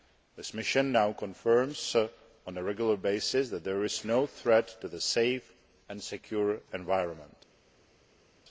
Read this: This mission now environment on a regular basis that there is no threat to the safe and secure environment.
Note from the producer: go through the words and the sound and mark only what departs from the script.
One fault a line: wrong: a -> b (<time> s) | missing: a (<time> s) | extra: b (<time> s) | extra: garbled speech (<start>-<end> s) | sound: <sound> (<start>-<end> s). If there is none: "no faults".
wrong: environment -> confirms (1.1 s)